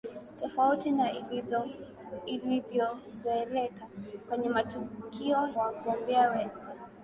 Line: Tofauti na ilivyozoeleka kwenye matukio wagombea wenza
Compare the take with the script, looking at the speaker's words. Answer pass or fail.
pass